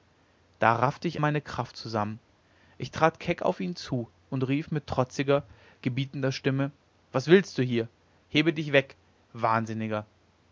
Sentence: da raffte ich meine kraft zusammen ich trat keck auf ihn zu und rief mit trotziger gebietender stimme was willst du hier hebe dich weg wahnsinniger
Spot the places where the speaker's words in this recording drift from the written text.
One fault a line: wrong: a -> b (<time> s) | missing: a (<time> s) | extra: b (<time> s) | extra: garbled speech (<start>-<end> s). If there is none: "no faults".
no faults